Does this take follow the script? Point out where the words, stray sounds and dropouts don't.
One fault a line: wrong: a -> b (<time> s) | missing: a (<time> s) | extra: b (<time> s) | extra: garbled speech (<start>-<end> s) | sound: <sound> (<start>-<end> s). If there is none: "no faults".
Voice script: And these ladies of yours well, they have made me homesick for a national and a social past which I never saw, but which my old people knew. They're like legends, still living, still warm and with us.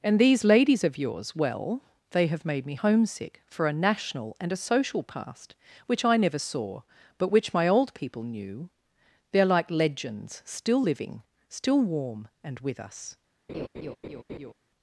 sound: laugh (13.5-14.5 s)